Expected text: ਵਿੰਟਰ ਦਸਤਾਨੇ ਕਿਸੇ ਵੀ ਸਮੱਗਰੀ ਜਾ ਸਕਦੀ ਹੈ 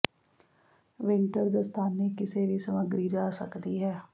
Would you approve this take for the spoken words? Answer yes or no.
yes